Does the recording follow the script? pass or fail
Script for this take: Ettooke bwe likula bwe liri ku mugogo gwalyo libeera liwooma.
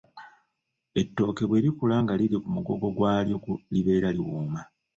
fail